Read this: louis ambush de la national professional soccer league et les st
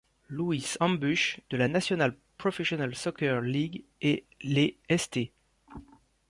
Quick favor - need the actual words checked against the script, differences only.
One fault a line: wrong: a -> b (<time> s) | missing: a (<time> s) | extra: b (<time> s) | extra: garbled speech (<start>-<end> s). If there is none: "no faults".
no faults